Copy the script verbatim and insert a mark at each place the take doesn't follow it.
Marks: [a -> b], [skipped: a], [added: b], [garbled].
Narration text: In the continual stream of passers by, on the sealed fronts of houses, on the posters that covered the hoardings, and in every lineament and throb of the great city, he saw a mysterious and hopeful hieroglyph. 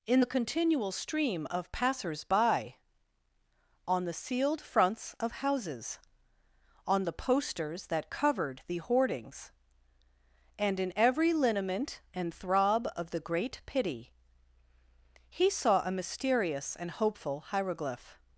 In the continual stream of passers by, on the sealed fronts of houses, on the posters that covered the hoardings, and in every lineament and throb of the great [city, -> pity] he saw a mysterious and hopeful hieroglyph.